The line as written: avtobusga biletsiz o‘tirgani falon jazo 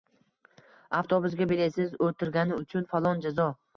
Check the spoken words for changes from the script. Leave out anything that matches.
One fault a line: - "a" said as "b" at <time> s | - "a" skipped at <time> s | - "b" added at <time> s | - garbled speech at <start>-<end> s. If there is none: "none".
- "uchun" added at 2.6 s